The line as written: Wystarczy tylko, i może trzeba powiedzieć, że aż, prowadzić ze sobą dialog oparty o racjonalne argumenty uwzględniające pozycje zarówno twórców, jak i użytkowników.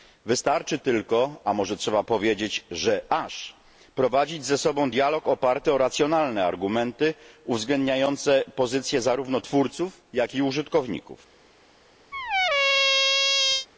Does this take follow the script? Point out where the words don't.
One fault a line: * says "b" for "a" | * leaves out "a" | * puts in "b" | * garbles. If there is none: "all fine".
* says "a" for "i"